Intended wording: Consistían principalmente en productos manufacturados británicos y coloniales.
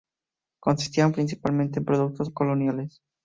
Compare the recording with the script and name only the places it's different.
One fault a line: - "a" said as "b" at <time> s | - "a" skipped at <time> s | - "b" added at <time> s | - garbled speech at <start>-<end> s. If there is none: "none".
- "manufacturados británicos" skipped at 2.3 s